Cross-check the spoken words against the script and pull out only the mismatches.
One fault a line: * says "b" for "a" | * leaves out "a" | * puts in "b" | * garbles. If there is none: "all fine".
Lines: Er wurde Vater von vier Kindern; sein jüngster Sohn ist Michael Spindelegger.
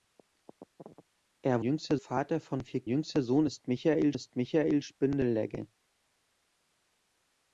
* says "jüngster" for "wurde"
* says "Jüngster Sohn ist Michael" for "Kindern sein jüngster Sohn"